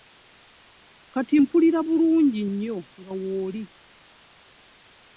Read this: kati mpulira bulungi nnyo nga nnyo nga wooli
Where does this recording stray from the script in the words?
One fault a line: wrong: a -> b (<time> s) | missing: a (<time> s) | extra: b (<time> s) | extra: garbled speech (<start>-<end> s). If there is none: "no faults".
missing: nnyo nga (3.1 s)